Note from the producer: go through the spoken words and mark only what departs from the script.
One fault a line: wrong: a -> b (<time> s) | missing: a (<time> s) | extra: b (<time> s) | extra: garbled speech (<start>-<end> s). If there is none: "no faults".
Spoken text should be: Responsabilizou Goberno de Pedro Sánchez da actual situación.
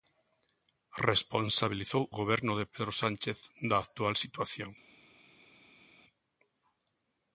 no faults